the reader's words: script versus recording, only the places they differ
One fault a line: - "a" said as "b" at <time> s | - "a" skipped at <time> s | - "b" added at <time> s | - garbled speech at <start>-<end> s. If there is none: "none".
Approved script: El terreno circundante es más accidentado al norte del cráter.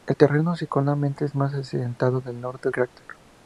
- "del" skipped at 2.7 s